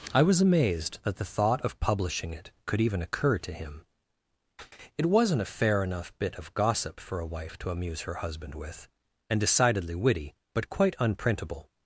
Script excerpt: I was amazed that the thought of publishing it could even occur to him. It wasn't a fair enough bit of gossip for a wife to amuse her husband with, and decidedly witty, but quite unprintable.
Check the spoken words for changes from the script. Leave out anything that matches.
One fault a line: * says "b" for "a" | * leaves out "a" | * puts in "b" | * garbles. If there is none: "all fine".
all fine